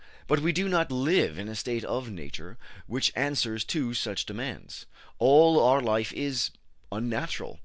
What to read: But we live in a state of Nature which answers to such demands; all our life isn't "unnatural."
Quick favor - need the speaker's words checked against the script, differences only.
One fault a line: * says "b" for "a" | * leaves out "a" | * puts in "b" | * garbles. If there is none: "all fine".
* puts in "do not"
* says "is" for "isn't"